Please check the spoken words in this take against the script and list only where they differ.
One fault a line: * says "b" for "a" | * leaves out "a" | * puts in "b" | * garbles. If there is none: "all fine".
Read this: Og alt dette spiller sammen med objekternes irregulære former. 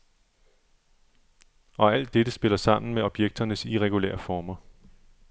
all fine